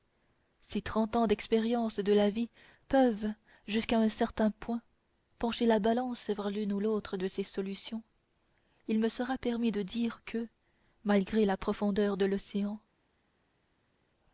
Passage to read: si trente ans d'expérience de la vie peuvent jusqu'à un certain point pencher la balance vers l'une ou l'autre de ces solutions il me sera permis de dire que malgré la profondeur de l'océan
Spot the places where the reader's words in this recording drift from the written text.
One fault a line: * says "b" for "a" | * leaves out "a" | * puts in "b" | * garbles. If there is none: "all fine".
all fine